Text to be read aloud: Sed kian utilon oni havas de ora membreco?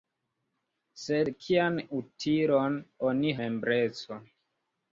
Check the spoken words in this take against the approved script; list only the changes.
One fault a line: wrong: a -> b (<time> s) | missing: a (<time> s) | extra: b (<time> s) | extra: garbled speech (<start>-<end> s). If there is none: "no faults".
missing: havas de ora (3.3 s)